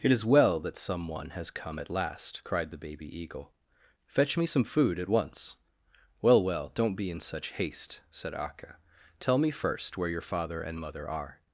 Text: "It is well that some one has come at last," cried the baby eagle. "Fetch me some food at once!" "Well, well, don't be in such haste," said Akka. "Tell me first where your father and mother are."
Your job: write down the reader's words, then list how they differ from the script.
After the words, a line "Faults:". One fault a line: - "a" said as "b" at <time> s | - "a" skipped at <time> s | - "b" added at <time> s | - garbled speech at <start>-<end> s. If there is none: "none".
"It is well that some one has come at last," cried the baby eagle. "Fetch me some food at once!" "Well, well, don't be in such haste," said Akka. "Tell me first where your father and mother are."
Faults:
none